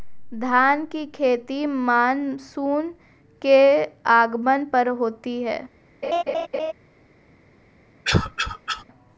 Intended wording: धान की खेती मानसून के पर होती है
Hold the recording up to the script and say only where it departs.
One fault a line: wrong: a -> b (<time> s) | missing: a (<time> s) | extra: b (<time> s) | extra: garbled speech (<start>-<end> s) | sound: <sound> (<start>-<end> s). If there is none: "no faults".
extra: आगमन (4.1 s)
sound: laugh (6.0-6.7 s)
sound: cough (8.0-8.8 s)